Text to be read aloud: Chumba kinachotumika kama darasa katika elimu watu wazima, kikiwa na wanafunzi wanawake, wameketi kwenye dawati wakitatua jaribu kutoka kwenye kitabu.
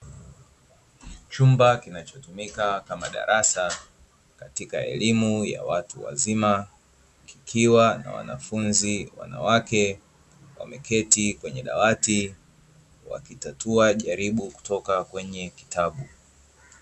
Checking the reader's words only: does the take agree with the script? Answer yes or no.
no